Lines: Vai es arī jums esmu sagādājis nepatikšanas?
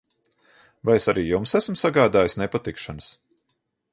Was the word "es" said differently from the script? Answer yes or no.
no